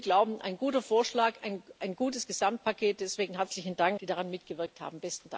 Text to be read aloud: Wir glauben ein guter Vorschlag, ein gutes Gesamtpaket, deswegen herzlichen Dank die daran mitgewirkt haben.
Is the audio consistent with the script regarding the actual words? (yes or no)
yes